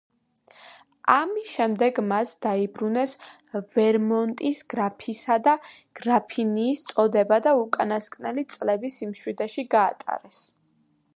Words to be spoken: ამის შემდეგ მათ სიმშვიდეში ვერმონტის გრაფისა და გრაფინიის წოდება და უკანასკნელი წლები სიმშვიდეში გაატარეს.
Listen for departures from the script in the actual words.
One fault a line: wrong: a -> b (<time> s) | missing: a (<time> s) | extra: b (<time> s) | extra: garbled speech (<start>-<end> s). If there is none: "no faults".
wrong: სიმშვიდეში -> დაიბრუნეს (2.5 s)